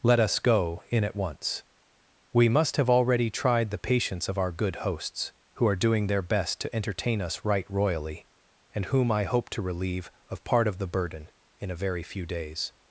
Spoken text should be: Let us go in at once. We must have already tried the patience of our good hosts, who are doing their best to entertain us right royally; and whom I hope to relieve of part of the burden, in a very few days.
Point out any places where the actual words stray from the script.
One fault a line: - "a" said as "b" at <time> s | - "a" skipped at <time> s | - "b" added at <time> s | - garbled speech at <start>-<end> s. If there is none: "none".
none